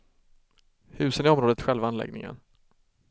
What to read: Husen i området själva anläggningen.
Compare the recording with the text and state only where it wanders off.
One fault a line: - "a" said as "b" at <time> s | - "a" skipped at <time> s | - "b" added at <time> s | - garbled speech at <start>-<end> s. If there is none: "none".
none